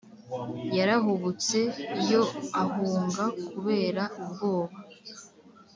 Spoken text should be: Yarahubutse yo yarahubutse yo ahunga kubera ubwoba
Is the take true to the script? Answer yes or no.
no